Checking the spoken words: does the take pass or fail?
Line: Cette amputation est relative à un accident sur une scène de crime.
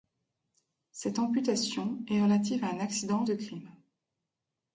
fail